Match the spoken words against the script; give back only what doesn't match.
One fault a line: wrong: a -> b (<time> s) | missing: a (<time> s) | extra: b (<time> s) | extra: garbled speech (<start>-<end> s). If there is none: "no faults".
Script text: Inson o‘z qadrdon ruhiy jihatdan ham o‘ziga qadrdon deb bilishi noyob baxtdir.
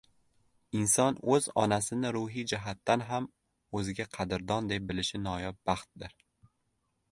wrong: qadrdon -> onasini (1.6 s)